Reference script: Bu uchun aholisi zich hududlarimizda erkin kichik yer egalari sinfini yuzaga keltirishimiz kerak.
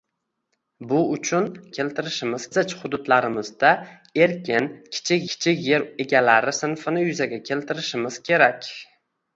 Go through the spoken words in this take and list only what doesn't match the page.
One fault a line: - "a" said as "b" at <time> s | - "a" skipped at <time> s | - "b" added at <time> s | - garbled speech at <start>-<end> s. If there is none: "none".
- "aholisi" said as "keltirishimiz" at 1.8 s
- "kichik" added at 5.3 s